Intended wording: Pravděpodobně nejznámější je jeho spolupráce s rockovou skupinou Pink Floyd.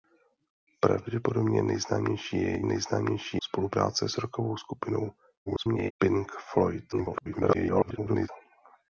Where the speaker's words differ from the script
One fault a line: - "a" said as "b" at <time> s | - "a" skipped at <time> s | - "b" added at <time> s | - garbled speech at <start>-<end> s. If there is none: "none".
- "jeho" said as "nejznámější" at 2.6 s
- garbled speech at 5.5-5.9 s
- garbled speech at 6.9-8.3 s